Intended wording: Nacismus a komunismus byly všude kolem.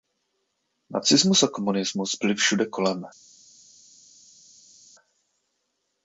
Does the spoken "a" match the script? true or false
true